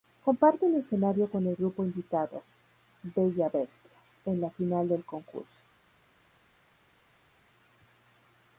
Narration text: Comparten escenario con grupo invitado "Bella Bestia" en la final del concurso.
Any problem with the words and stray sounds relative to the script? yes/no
yes